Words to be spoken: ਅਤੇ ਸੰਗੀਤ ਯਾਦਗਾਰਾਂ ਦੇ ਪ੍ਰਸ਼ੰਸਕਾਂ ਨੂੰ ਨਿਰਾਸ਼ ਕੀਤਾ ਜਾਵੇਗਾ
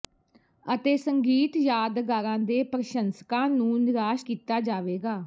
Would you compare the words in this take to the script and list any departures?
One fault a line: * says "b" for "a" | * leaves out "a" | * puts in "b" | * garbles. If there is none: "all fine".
all fine